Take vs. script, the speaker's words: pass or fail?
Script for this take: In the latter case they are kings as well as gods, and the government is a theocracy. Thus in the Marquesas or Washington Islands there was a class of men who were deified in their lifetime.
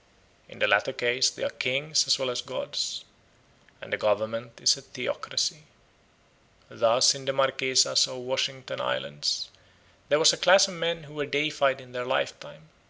pass